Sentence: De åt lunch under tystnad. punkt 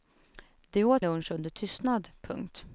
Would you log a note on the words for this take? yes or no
no